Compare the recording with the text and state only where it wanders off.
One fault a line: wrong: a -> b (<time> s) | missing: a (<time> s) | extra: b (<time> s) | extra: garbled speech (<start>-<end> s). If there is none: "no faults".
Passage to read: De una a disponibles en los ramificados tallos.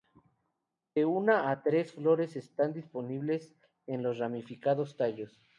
extra: tres flores están (1.6 s)